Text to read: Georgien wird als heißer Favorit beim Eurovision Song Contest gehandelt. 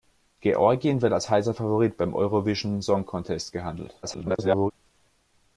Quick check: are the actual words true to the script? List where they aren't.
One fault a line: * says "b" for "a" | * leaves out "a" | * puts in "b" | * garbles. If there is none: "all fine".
* garbles